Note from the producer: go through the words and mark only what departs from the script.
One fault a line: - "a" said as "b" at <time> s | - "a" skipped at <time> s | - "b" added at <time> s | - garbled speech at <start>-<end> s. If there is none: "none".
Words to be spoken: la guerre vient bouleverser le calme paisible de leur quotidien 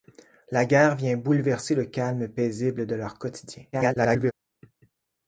- garbled speech at 3.7-4.3 s